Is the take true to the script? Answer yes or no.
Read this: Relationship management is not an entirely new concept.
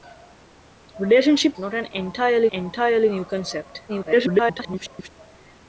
no